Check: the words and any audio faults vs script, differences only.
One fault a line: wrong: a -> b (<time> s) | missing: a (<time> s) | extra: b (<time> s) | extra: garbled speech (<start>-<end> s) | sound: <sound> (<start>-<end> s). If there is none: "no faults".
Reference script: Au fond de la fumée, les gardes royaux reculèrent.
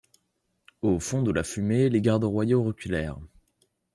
no faults